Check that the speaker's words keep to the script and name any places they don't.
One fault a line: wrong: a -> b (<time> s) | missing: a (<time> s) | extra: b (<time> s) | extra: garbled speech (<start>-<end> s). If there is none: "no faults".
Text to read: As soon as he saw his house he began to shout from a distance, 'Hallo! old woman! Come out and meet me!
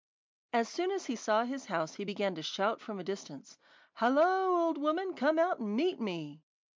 no faults